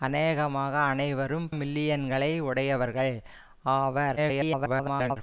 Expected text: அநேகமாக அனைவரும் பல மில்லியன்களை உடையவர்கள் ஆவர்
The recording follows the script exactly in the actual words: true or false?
false